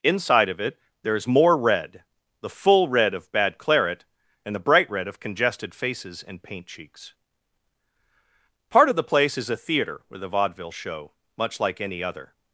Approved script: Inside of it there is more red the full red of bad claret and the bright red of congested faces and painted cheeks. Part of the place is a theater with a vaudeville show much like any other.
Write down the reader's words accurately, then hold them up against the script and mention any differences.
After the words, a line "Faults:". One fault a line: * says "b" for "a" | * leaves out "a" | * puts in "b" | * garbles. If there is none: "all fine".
Inside of it there is more red the full red of bad claret and the bright red of congested faces and paint cheeks. Part of the place is a theater with a vaudeville show much like any other.
Faults:
* says "paint" for "painted"